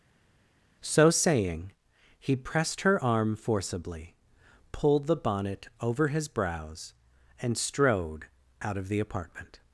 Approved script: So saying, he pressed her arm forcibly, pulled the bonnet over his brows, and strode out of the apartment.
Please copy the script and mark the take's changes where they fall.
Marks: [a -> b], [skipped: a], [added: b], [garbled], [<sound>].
So saying, he pressed her arm forcibly, pulled the bonnet over his brows, and strode out of the apartment.